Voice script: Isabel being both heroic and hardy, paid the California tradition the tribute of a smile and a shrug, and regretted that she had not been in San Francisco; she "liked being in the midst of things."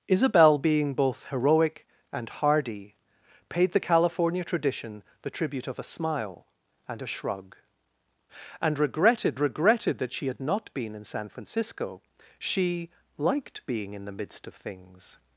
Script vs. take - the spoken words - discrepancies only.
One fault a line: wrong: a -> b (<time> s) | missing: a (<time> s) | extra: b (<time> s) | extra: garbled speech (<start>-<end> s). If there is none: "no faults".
extra: regretted (9.4 s)